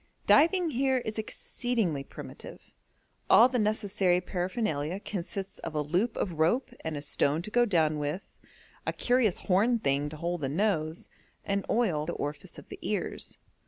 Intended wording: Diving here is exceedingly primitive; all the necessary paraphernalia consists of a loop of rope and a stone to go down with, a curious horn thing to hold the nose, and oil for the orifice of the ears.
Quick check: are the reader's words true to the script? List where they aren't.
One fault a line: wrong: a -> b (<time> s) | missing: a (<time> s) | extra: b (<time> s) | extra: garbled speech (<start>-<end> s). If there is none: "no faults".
missing: for (12.1 s)